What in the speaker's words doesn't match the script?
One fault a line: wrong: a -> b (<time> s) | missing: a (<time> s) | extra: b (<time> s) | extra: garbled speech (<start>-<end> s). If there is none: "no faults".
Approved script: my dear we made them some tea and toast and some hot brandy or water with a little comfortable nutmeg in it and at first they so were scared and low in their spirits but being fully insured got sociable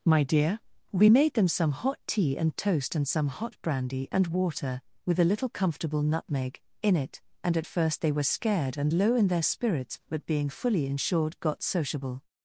extra: hot (1.7 s)
wrong: or -> and (4.1 s)
missing: so (8.1 s)